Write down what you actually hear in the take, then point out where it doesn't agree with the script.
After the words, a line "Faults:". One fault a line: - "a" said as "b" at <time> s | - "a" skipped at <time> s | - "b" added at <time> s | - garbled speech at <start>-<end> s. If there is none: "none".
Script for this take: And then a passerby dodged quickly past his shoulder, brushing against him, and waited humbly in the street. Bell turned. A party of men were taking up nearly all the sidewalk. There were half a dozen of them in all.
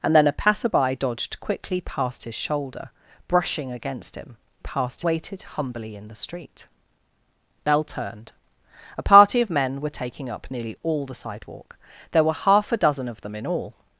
And then a passerby dodged quickly past his shoulder, brushing against him, past waited humbly in the street. Bell turned. A party of men were taking up nearly all the sidewalk. There were half a dozen of them in all.
Faults:
- "and" said as "past" at 4.6 s